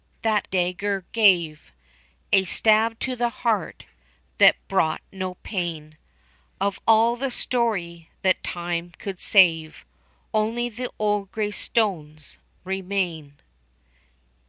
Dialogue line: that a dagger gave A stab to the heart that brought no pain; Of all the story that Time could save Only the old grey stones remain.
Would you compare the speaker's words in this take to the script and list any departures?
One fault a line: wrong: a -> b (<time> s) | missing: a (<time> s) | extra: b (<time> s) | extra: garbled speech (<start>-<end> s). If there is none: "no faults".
missing: a (0.5 s)